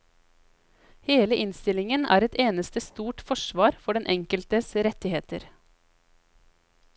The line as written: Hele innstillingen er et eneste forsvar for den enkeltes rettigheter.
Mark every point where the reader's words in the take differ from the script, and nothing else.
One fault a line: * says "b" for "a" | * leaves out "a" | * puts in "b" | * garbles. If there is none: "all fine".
* puts in "stort"